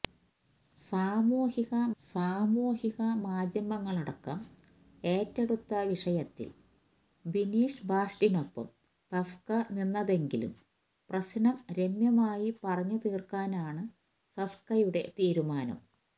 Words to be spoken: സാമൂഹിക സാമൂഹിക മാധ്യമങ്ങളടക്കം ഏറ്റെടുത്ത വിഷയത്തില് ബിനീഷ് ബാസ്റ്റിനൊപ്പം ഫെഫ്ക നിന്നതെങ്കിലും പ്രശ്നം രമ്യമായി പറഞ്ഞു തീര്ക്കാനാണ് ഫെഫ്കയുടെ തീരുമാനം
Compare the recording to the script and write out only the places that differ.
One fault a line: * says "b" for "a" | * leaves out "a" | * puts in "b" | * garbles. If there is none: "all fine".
all fine